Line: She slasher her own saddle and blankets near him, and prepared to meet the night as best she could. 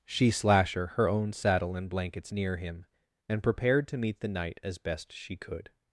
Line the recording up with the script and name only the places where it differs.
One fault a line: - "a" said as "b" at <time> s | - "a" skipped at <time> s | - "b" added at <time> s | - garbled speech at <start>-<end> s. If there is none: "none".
none